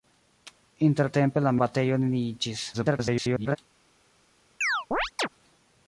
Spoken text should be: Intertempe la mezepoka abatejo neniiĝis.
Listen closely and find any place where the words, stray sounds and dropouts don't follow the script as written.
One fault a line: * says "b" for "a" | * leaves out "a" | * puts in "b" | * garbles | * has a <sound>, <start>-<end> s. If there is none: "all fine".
* leaves out "mezepoka"
* garbles
* has a chirp, 4.6-5.3 s